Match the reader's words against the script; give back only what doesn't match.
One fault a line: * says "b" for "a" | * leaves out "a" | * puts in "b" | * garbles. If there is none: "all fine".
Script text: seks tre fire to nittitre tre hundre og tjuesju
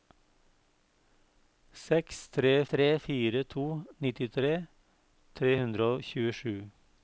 * puts in "tre"